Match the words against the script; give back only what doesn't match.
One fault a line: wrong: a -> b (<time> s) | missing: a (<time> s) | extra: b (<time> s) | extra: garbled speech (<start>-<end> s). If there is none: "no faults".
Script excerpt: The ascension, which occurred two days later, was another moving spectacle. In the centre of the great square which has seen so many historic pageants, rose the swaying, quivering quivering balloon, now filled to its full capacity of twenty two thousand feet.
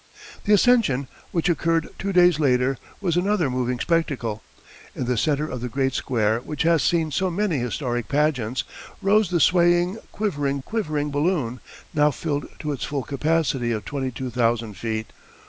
no faults